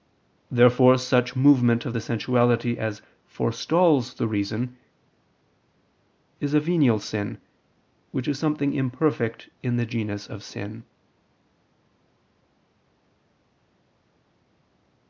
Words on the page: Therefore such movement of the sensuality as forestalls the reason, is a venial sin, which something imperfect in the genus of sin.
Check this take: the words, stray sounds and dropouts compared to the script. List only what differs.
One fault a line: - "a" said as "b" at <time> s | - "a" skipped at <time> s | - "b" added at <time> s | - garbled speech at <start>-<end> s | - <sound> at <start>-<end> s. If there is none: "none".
- "is" added at 8.3 s